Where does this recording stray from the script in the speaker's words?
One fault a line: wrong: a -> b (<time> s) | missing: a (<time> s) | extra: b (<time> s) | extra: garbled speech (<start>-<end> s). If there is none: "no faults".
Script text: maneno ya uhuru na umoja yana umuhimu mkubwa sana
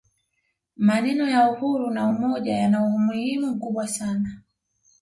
no faults